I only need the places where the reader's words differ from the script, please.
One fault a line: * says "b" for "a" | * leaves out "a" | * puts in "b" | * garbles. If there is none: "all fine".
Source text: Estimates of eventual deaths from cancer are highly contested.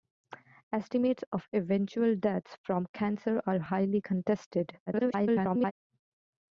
* garbles